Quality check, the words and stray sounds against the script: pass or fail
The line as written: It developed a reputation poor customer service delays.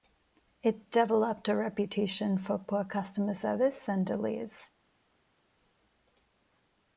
fail